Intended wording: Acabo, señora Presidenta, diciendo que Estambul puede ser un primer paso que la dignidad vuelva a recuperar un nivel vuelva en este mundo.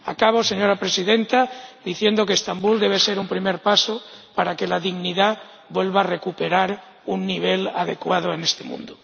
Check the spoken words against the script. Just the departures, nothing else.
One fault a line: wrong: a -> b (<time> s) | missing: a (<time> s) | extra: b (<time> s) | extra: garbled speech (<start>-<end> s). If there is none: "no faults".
wrong: puede -> debe (2.8 s)
extra: para (4.4 s)
wrong: vuelva -> adecuado (7.7 s)